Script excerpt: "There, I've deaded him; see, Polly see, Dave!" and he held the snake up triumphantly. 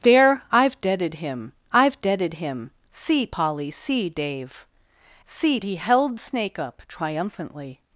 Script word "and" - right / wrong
wrong